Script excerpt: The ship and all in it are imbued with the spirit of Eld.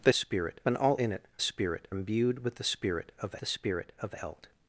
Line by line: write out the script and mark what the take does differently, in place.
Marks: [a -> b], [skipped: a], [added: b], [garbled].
The [ship -> spirit] and all in it [are -> spirit] imbued with the spirit of [added: the spirit of] Eld.